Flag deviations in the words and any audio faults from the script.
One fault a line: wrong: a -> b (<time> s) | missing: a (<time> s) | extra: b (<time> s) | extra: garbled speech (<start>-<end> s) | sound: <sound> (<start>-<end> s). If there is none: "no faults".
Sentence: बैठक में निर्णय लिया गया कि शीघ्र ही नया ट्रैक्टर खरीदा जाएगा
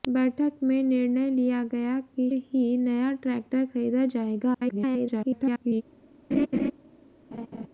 missing: शीघ्र (2.3 s)
extra: garbled speech (4.5-5.8 s)
sound: laugh (6.3-6.7 s)
sound: laugh (7.3-7.7 s)